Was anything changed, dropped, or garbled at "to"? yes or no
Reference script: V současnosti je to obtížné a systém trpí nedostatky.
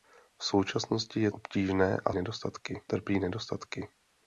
yes